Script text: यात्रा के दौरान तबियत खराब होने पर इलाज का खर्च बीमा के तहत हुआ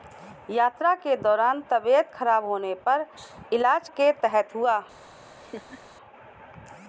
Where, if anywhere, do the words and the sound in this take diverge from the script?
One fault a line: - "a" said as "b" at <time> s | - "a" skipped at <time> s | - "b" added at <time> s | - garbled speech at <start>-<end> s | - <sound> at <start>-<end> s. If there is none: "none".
- "का खर्च बीमा" skipped at 3.9 s
- laugh at 5.1-5.8 s